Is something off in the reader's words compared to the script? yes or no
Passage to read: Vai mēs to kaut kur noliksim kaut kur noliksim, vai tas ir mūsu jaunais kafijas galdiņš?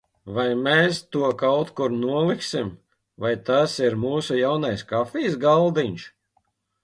yes